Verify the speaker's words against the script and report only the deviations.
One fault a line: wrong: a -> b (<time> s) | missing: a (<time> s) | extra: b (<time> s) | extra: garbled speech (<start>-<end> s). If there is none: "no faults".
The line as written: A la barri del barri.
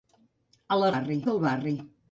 no faults